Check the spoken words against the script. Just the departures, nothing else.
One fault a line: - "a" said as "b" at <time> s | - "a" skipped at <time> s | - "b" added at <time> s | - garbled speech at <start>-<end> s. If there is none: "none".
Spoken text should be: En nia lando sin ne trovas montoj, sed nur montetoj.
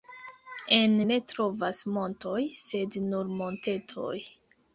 - "nia lando sin" skipped at 0.9 s